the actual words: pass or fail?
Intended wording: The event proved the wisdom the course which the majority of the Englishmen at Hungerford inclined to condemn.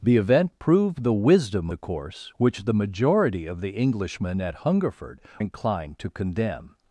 pass